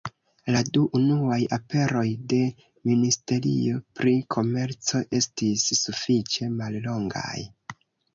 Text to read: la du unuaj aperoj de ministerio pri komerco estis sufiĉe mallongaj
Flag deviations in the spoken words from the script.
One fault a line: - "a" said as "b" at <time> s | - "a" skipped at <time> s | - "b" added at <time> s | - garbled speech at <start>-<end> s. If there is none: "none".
none